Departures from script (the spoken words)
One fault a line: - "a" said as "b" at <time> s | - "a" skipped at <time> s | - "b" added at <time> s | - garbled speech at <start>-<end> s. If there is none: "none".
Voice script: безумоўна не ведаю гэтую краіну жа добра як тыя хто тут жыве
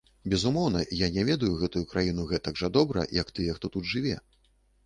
- "я" added at 1.0 s
- "гэтак" added at 2.3 s